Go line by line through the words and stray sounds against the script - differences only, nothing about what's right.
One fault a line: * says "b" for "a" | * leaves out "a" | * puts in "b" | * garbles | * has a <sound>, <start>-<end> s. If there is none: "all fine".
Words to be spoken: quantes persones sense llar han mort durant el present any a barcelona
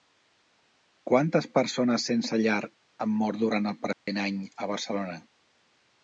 * has a dropout, 3.9-4.1 s